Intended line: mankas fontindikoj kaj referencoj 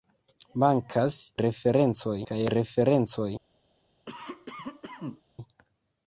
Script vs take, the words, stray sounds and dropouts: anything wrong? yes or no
yes